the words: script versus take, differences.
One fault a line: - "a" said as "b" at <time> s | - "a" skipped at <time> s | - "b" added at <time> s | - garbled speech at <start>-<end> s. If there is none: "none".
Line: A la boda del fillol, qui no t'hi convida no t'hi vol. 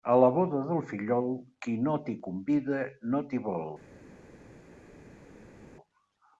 none